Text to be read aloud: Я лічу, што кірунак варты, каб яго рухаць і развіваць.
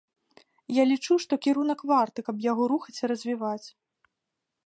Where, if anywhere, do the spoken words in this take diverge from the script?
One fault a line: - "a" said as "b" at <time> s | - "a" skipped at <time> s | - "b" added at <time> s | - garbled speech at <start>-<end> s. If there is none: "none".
none